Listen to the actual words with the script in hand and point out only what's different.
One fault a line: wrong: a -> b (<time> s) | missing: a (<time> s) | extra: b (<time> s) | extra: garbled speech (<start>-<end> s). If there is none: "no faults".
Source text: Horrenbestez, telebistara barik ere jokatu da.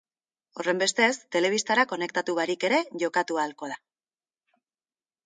extra: konektatu (1.9 s)
extra: ahalko (3.4 s)